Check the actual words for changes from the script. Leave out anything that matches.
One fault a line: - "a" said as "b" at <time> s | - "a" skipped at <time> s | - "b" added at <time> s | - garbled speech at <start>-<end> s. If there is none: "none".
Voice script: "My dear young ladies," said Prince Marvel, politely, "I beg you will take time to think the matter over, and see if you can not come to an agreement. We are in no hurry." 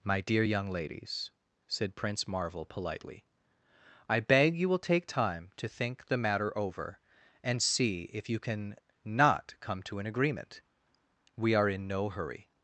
none